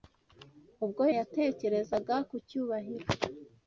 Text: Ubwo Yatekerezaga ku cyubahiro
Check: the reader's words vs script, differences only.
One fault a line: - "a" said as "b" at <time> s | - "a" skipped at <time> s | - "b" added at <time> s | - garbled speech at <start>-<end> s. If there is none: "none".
none